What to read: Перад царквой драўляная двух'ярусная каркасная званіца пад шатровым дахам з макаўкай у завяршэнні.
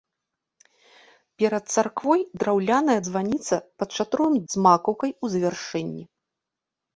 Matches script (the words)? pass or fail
fail